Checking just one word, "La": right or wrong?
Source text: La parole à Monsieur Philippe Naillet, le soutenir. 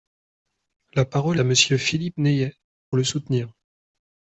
right